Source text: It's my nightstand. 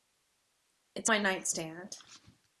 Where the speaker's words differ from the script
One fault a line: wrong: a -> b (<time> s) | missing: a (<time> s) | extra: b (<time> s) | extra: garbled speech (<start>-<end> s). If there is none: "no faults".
no faults